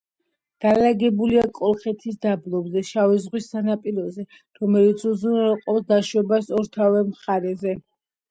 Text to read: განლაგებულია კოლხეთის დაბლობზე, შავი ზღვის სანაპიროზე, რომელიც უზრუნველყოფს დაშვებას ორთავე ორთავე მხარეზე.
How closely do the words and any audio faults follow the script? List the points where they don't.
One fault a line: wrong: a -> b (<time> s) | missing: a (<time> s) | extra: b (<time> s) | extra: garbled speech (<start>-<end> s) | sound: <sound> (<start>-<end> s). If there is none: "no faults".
missing: ორთავე (7.0 s)